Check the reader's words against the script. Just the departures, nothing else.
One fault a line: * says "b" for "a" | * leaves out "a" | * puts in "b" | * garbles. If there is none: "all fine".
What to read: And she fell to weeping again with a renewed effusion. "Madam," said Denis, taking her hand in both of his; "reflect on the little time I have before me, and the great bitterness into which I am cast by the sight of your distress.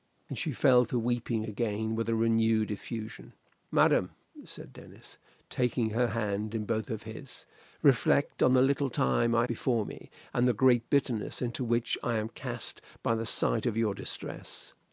* leaves out "have"